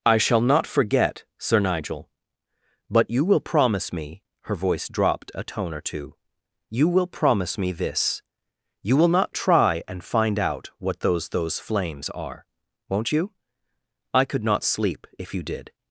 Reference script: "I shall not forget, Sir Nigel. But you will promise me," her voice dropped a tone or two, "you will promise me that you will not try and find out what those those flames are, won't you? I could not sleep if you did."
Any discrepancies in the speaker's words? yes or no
yes